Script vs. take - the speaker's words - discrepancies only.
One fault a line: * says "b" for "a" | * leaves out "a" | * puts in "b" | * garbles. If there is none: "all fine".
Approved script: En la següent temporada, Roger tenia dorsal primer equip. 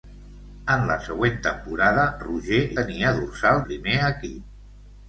all fine